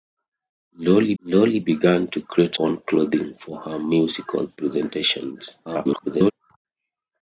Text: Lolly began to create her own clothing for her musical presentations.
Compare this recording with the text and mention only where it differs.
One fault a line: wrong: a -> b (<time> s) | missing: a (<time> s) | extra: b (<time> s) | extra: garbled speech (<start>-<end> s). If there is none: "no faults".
extra: lolly (1.2 s)
missing: her (2.6 s)
extra: garbled speech (5.6-6.3 s)